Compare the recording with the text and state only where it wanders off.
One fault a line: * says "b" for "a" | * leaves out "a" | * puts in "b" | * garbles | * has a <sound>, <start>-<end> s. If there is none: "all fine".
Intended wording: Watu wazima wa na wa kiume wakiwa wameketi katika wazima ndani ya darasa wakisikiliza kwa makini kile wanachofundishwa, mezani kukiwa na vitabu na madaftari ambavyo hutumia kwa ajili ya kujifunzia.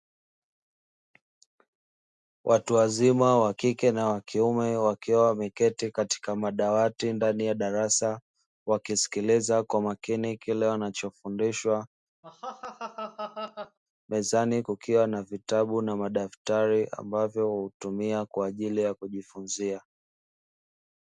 * puts in "kike"
* says "madawati" for "wazima"
* has a laugh, 12.2-13.8 s